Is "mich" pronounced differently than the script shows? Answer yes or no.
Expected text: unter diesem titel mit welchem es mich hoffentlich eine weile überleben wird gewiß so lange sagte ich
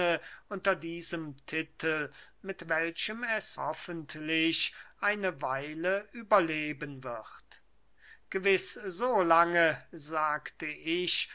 yes